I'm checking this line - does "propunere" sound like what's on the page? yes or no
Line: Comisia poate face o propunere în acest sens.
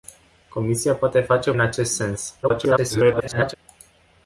no